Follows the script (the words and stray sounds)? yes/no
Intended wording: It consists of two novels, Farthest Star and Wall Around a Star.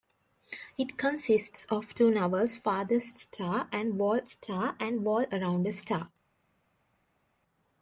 no